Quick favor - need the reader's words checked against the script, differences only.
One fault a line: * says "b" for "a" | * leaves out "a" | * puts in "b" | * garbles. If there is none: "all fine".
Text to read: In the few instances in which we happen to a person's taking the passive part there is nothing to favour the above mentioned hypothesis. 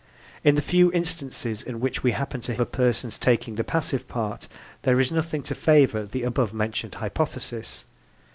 all fine